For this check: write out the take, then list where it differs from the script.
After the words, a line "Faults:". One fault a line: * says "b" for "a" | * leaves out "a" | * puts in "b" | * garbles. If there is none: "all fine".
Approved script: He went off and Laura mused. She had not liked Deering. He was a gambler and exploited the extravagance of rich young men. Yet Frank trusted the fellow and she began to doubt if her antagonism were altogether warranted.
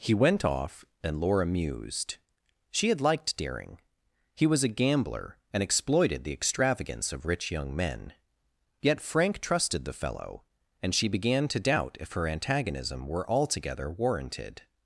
He went off and Laura mused. She had liked Deering. He was a gambler and exploited the extravagance of rich young men. Yet Frank trusted the fellow and she began to doubt if her antagonism were altogether warranted.
Faults:
* leaves out "not"